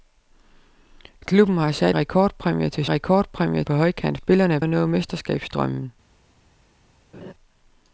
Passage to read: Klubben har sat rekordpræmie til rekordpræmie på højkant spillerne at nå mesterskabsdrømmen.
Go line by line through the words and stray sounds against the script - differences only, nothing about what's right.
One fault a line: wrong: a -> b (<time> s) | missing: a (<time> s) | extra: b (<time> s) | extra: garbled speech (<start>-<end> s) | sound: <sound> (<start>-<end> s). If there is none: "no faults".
sound: laugh (7.1-7.3 s)